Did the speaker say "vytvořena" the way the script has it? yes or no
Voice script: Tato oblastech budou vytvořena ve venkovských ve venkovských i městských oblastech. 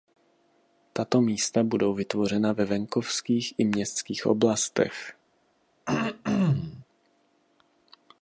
yes